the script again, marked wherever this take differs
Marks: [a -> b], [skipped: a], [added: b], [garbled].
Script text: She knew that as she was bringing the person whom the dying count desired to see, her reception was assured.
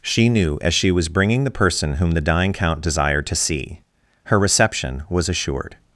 She knew [skipped: that] as she was bringing the person whom the dying count desired to see, her reception was assured.